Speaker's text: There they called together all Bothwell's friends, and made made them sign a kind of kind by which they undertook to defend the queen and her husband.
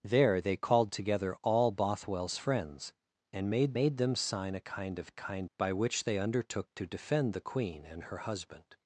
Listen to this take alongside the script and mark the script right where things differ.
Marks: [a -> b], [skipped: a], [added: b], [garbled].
There they called together all Bothwell's friends, and made made them sign a kind of kind by which they undertook to defend the queen and her husband.